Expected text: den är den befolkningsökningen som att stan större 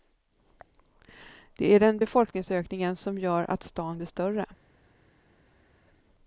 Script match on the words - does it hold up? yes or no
no